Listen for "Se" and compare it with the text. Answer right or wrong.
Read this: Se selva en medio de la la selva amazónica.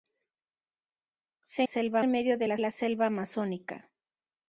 right